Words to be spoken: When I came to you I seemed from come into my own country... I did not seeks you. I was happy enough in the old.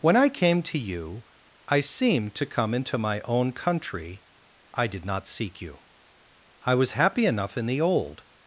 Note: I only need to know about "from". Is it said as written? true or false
false